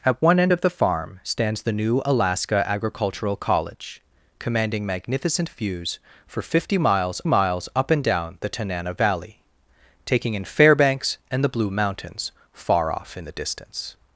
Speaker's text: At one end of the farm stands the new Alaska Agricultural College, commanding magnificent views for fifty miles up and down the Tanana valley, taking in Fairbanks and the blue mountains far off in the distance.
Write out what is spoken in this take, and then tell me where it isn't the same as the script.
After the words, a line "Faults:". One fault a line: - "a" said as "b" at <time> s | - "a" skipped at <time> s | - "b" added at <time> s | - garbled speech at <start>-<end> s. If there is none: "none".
At one end of the farm stands the new Alaska Agricultural College, commanding magnificent views for fifty miles miles up and down the Tanana valley, taking in Fairbanks and the blue mountains far off in the distance.
Faults:
- "miles" added at 7.2 s